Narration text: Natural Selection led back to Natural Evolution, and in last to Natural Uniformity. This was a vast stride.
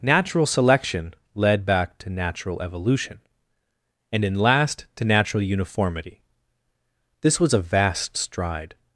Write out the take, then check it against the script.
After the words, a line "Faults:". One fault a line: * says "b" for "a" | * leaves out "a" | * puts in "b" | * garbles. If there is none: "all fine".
Natural Selection led back to Natural Evolution, and in last to Natural Uniformity. This was a vast stride.
Faults:
all fine